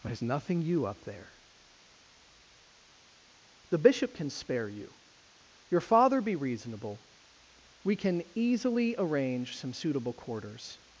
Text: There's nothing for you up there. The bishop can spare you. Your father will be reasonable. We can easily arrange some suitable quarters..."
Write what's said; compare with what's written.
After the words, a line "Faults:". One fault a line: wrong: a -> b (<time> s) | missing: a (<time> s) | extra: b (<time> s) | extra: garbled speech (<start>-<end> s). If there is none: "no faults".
There's nothing you up there. The bishop can spare you. Your father be reasonable. We can easily arrange some suitable quarters..."
Faults:
missing: for (0.6 s)
missing: will (6.2 s)